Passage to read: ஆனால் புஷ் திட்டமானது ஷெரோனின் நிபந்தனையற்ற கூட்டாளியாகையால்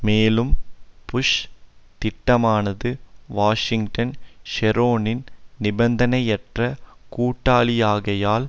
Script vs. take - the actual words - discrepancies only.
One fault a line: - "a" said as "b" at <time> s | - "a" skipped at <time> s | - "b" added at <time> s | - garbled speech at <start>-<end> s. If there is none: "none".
- "ஆனால்" said as "மேலும்" at 0.0 s
- "வாஷிங்டன்" added at 3.3 s